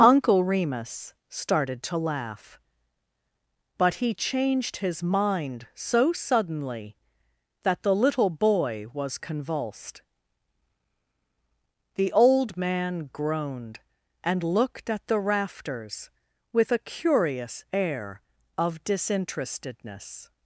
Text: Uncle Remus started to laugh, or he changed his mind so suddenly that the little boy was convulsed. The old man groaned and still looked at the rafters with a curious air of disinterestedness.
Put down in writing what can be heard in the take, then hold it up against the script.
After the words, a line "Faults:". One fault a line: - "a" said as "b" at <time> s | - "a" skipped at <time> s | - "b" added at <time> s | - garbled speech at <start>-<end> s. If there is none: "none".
Uncle Remus started to laugh, but he changed his mind so suddenly that the little boy was convulsed. The old man groaned and looked at the rafters with a curious air of disinterestedness.
Faults:
- "or" said as "but" at 3.8 s
- "still" skipped at 14.4 s